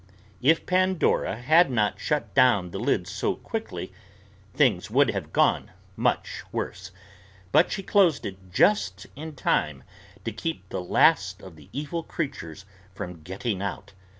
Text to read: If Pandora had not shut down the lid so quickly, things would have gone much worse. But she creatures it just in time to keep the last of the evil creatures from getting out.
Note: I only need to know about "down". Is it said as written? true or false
true